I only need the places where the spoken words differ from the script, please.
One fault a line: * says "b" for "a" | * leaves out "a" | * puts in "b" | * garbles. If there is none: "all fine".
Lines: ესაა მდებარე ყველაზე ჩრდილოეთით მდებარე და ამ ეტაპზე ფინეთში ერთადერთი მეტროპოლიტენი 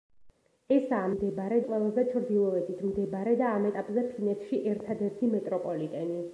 all fine